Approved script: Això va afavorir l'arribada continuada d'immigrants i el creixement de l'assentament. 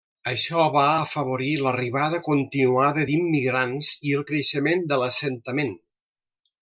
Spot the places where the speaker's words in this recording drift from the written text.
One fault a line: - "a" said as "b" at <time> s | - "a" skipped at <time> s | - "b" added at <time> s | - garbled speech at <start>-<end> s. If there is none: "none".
none